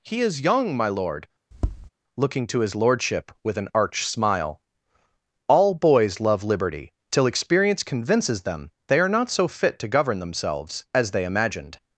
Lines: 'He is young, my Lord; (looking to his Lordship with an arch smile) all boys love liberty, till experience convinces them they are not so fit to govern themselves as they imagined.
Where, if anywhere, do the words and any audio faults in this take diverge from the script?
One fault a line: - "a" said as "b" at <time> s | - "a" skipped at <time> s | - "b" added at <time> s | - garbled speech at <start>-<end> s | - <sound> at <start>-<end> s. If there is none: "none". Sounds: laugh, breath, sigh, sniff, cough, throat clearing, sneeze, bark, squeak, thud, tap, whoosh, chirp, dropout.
- tap at 1.5-1.9 s